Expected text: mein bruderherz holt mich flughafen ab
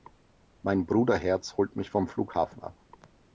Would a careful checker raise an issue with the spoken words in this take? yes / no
yes